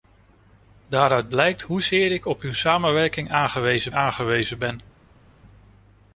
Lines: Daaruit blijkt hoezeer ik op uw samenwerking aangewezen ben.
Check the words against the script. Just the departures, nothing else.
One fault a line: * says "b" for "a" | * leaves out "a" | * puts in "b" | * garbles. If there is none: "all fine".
* puts in "aangewezen"